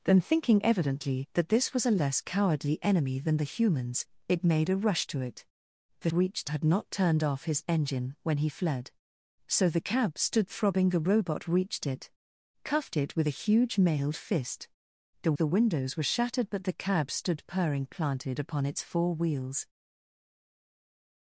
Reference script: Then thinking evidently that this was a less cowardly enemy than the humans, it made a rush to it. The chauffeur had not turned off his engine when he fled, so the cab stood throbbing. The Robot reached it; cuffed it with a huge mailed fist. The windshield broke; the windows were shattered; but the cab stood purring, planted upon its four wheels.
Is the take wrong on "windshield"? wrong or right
wrong